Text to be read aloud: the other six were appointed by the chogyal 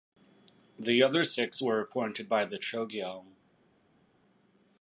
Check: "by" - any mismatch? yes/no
no